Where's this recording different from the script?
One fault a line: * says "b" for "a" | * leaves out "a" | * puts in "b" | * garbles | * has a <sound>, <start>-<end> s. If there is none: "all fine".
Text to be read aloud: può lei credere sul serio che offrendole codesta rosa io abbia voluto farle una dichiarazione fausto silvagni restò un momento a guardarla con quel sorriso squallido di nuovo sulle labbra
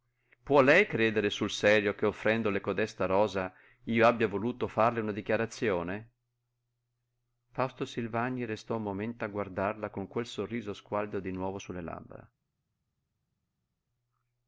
all fine